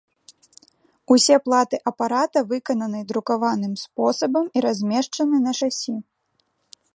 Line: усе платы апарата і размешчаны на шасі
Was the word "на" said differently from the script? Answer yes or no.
no